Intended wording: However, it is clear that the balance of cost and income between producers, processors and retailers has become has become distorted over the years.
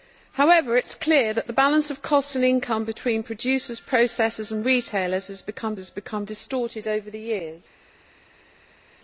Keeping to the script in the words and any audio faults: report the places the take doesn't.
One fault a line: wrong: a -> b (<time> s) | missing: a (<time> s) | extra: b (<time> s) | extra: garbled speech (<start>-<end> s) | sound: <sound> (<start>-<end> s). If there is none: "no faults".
no faults